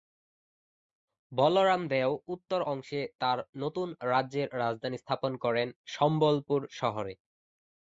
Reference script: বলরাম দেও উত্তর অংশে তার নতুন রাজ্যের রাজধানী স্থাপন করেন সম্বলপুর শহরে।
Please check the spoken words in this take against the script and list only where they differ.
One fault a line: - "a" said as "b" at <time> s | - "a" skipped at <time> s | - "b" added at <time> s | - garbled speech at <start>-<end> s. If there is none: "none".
none